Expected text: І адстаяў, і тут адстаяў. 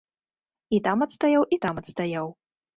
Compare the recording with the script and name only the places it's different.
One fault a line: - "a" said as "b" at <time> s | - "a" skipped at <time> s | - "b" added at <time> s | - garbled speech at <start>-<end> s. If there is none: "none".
- "там" added at 0.9 s
- "тут" said as "там" at 1.7 s